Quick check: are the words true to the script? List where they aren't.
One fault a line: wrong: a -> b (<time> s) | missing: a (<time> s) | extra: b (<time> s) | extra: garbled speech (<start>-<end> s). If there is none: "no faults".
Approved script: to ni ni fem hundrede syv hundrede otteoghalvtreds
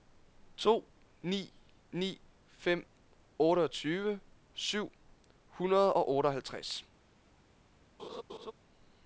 wrong: hundrede -> otteogtyve (3.4 s)
extra: og (5.9 s)